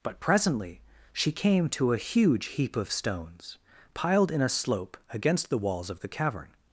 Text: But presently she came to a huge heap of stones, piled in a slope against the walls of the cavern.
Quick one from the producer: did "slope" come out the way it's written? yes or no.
yes